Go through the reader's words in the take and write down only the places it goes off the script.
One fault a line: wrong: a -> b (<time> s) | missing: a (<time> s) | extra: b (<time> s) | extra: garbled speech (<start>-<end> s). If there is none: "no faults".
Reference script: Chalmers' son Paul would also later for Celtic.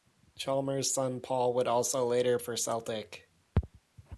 no faults